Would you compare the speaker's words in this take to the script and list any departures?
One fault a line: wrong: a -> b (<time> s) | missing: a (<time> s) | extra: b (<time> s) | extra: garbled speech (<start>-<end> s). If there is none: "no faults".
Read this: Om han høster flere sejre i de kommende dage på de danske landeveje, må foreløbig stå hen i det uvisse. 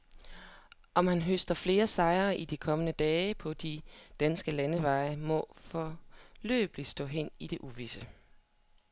no faults